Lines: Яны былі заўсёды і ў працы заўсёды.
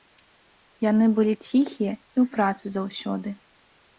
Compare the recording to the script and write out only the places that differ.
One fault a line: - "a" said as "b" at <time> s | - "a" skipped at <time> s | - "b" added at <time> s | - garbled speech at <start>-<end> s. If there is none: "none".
- "заўсёды" said as "ціхія" at 1.5 s